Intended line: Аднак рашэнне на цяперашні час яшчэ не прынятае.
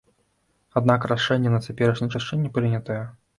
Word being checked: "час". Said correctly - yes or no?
no